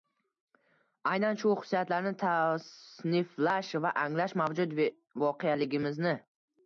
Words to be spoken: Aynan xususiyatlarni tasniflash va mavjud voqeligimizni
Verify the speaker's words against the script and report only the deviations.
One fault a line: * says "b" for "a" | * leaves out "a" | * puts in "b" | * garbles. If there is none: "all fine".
* puts in "shu"
* puts in "anglash"